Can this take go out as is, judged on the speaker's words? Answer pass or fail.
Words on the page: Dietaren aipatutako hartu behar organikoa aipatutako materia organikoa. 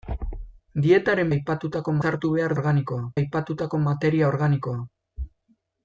pass